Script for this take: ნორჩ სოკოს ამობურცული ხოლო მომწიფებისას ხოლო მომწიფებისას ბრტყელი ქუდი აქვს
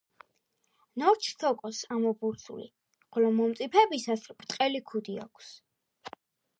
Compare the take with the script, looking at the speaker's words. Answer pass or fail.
fail